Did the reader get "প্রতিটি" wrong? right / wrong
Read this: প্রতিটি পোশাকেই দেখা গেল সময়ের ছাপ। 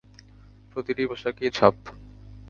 right